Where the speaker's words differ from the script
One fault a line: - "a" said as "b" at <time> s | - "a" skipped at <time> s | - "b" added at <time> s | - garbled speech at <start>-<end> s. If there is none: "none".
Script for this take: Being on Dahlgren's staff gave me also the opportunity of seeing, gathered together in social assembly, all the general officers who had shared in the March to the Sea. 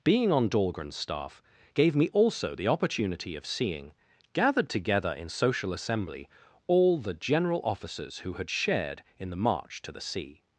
none